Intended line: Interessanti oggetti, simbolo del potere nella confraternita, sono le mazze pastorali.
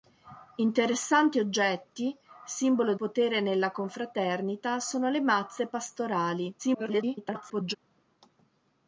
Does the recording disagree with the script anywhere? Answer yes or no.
yes